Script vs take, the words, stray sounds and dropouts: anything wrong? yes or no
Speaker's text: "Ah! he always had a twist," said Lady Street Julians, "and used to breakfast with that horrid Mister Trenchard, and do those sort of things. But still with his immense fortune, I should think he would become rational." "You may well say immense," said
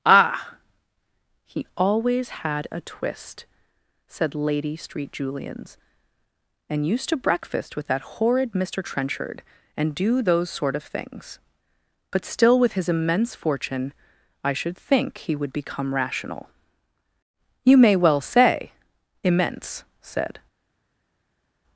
no